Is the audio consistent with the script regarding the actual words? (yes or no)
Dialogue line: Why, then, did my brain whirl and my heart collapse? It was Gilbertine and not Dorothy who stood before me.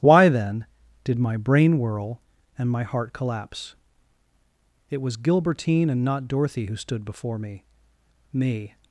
no